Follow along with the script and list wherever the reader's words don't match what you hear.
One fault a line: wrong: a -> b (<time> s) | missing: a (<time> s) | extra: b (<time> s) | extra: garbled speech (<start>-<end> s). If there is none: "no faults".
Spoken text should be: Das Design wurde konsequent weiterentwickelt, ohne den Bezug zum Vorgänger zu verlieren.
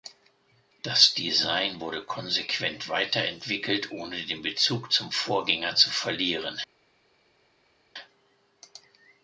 no faults